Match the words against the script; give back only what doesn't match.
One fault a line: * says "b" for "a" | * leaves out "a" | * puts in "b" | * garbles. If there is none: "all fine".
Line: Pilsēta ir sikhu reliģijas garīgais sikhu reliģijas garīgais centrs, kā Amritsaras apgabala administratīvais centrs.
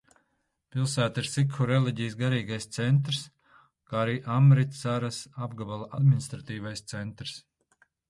* leaves out "sikhu reliģijas garīgais"
* puts in "arī"